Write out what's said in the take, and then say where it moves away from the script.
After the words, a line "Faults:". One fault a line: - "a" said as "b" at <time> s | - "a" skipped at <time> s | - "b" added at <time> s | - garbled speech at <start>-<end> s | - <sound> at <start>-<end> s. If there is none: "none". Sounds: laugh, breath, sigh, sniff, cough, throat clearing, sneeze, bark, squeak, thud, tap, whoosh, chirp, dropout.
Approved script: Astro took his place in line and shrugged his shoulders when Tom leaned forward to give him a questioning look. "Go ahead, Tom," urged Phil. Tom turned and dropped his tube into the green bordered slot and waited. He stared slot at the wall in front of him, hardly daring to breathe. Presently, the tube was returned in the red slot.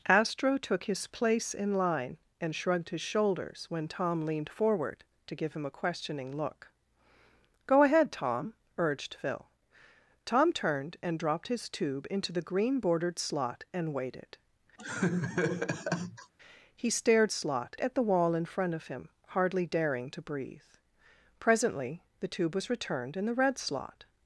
Astro took his place in line and shrugged his shoulders when Tom leaned forward to give him a questioning look. "Go ahead, Tom," urged Phil. Tom turned and dropped his tube into the green bordered slot and waited. He stared slot at the wall in front of him, hardly daring to breathe. Presently, the tube was returned in the red slot.
Faults:
- laugh at 14.8-16.3 s